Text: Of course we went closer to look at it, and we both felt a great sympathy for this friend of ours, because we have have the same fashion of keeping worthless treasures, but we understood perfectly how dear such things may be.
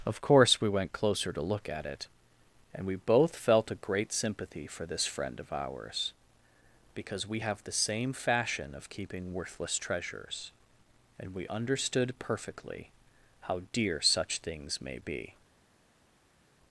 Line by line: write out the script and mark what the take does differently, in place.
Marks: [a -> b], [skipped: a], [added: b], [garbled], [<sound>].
Of course we went closer to look at it, and we both felt a great sympathy for this friend of ours, because we have [skipped: have] the same fashion of keeping worthless treasures, [but -> and] we understood perfectly how dear such things may be.